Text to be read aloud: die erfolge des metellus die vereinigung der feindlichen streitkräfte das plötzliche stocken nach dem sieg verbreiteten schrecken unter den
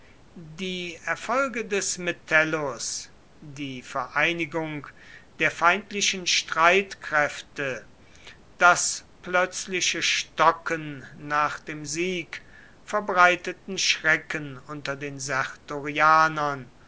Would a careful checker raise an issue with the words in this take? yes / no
no